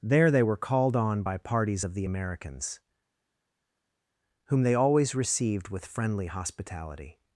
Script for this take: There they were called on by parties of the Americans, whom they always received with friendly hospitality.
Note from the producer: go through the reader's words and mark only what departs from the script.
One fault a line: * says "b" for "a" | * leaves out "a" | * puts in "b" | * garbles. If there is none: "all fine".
all fine